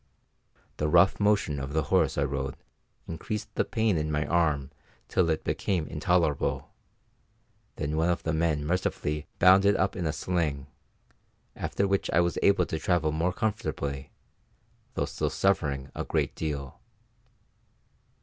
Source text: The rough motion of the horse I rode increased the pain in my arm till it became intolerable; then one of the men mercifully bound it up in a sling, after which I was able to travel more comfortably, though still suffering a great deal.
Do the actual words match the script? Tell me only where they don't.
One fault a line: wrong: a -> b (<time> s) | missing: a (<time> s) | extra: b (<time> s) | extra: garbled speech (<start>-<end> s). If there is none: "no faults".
no faults